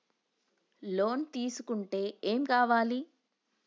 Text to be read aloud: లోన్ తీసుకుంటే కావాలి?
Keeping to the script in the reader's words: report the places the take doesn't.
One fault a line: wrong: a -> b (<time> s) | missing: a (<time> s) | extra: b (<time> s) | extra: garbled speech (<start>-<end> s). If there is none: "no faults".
extra: ఏం (2.2 s)